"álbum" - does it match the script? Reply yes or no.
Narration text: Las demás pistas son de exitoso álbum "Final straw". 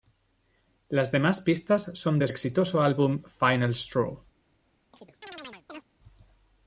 yes